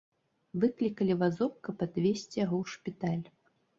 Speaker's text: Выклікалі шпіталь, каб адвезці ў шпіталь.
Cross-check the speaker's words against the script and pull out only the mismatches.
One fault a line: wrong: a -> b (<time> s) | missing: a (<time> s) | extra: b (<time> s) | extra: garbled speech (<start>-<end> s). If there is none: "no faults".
wrong: шпіталь -> вазок (1.2 s)
extra: яго (2.5 s)